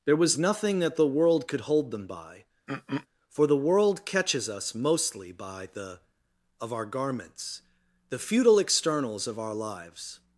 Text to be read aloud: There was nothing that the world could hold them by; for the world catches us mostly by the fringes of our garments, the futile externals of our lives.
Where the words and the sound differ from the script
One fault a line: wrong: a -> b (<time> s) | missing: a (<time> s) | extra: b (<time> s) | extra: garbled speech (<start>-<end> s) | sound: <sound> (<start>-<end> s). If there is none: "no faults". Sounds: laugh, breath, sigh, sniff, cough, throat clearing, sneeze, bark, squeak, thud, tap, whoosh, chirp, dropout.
sound: throat clearing (2.7-3.1 s)
missing: fringes (6.0 s)